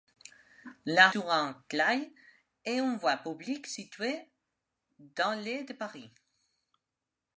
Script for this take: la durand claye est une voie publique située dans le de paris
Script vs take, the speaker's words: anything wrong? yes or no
no